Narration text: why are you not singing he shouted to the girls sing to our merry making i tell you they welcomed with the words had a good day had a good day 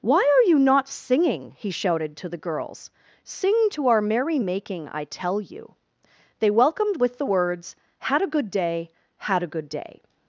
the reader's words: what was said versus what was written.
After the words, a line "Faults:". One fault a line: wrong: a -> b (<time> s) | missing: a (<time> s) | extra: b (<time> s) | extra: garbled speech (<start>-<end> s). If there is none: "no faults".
why are you not singing he shouted to the girls sing to our merry making i tell you they welcomed with the words had a good day had a good day
Faults:
no faults